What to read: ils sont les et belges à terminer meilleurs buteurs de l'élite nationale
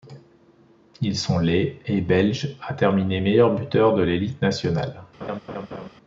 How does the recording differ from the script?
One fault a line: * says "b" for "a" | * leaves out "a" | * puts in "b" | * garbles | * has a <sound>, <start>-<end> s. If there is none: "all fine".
* has a laugh, 5.2-5.9 s